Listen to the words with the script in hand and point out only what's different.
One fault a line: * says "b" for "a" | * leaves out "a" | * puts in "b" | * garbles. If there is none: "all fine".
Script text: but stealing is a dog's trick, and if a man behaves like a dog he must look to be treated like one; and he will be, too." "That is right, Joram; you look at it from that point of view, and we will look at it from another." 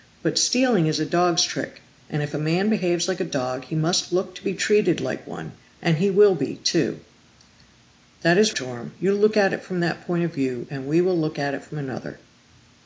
* leaves out "right"